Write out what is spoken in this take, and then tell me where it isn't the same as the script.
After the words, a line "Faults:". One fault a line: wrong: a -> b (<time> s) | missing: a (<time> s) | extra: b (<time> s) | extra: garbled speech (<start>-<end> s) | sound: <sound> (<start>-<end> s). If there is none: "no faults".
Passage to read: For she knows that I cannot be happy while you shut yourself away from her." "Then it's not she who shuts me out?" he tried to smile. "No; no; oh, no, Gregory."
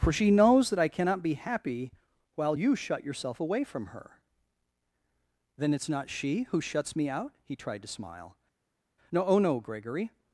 For she knows that I cannot be happy while you shut yourself away from her." "Then it's not she who shuts me out?" he tried to smile. "No; oh, no, Gregory."
Faults:
missing: no (9.2 s)